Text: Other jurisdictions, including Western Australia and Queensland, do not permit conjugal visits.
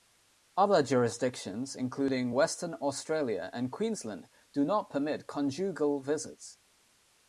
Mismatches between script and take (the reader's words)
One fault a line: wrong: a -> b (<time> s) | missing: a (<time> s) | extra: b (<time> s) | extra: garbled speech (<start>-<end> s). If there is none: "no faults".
no faults